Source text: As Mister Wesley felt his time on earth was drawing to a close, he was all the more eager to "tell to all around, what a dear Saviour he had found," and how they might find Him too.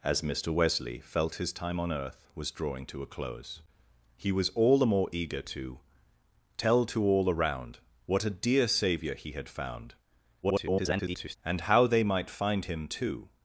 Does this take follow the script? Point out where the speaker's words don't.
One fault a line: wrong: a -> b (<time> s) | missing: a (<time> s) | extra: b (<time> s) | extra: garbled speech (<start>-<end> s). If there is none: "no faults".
extra: garbled speech (10.4-11.4 s)